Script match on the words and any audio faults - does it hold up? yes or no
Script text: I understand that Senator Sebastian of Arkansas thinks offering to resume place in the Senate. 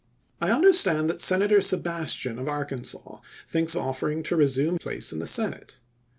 yes